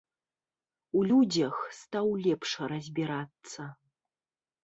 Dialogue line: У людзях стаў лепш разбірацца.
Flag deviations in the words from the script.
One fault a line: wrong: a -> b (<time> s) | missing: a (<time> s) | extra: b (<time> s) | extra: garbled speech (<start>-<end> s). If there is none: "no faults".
no faults